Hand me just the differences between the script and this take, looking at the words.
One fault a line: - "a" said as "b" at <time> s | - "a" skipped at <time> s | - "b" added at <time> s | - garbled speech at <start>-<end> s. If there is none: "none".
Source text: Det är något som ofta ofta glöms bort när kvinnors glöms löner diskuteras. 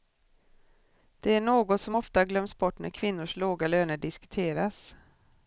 - "ofta" skipped at 2.3 s
- "glöms" said as "låga" at 3.4 s